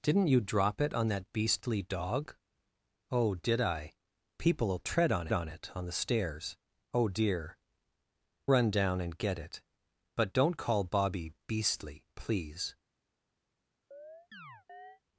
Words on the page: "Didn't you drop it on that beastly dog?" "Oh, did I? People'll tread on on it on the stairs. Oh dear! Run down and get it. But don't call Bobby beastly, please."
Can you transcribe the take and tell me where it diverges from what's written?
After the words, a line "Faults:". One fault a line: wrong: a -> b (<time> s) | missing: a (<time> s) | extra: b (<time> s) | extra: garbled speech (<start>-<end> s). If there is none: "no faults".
"Didn't you drop it on that beastly dog?" "Oh, did I? People'll tread on on it on the stairs. Oh dear! Run down and get it. But don't call Bobby beastly, please."
Faults:
no faults